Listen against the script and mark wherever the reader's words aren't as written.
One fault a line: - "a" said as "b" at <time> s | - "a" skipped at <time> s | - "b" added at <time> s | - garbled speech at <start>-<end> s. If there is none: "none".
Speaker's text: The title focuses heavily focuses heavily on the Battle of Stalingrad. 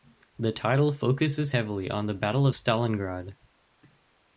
- "focuses heavily" skipped at 1.9 s